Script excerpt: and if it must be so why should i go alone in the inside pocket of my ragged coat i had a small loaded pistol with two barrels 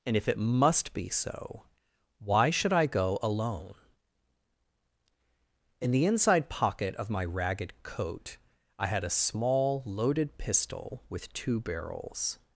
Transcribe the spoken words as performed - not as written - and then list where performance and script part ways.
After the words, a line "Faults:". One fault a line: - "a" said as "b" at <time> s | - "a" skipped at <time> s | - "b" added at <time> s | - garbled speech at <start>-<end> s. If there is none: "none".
and if it must be so why should i go alone in the inside pocket of my ragged coat i had a small loaded pistol with two barrels
Faults:
none